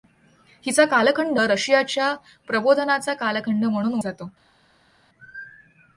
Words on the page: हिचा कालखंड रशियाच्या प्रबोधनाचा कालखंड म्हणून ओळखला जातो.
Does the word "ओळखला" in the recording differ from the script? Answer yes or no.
yes